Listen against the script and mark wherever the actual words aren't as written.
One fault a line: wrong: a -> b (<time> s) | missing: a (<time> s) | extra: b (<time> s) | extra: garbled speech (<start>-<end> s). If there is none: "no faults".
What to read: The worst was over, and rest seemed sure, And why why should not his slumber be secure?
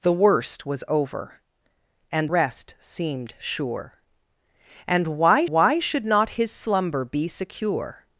no faults